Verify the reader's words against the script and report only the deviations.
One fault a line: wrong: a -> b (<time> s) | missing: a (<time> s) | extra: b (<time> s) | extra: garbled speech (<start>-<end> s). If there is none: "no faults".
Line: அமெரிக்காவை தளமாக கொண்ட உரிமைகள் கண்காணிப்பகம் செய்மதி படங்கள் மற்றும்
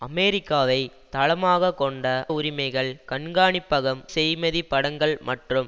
no faults